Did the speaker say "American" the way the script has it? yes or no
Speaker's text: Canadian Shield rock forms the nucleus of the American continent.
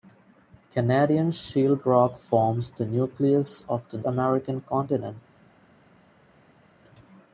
yes